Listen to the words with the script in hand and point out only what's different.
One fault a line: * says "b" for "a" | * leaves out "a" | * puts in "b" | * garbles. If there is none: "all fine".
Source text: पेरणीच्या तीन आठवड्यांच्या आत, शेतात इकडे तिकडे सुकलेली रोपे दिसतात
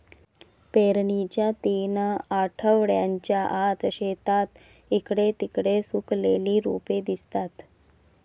all fine